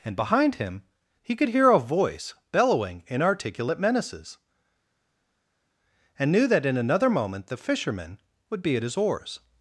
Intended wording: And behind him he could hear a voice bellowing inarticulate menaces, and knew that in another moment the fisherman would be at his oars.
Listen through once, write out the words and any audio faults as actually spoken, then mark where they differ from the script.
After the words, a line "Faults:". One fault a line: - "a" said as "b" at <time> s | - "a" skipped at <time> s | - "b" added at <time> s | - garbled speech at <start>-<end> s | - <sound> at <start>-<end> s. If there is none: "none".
And behind him he could hear a voice bellowing inarticulate menaces, and knew that in another moment the fisherman would be at his oars.
Faults:
none